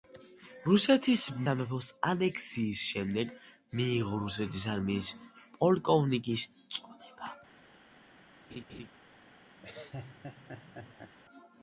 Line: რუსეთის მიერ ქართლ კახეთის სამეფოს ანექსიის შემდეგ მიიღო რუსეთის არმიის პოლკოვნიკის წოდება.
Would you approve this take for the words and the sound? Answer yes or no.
no